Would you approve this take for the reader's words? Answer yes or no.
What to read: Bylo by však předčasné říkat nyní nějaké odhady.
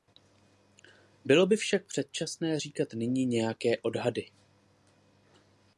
yes